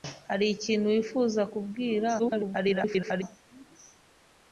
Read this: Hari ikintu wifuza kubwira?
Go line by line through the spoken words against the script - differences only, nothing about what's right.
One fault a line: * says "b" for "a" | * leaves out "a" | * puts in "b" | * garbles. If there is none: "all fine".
* garbles